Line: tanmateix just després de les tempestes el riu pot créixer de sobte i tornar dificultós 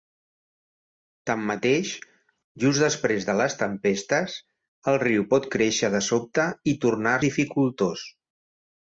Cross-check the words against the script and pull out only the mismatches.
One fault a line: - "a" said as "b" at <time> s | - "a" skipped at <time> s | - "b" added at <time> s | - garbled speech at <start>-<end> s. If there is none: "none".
none